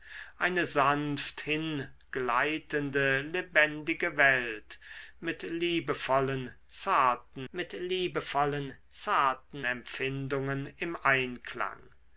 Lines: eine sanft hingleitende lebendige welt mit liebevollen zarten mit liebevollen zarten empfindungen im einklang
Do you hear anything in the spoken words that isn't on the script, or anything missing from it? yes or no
no